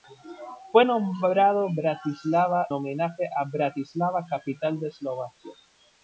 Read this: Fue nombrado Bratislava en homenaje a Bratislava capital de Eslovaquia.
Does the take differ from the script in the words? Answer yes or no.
yes